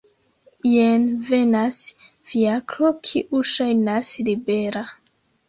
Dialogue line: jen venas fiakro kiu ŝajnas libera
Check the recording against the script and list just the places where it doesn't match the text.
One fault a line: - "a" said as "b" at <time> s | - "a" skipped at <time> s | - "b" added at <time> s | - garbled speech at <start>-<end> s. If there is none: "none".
none